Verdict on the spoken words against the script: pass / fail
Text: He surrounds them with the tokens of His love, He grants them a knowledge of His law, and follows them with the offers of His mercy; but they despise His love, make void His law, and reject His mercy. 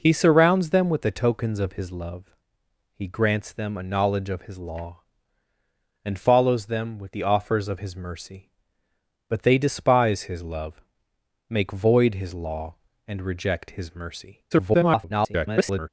fail